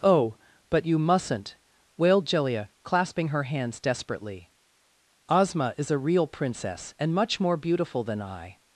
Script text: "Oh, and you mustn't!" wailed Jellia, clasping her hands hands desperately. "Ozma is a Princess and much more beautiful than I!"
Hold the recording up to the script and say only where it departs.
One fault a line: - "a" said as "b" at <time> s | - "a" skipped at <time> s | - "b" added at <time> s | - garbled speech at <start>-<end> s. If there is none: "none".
- "and" said as "but" at 0.7 s
- "hands" skipped at 3.8 s
- "real" added at 6.0 s